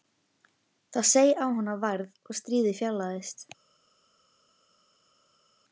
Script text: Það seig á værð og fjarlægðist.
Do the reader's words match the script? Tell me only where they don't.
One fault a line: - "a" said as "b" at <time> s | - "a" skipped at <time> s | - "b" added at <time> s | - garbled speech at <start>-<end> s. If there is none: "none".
- "hana" added at 1.6 s
- "stríðið" added at 2.4 s